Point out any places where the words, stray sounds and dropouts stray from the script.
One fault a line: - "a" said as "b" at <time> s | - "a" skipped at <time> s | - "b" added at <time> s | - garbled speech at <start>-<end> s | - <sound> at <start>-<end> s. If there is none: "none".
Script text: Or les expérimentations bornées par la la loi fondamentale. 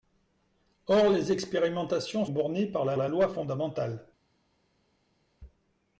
none